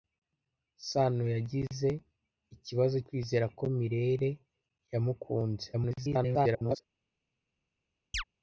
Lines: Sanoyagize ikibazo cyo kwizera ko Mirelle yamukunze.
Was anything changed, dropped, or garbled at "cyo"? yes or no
yes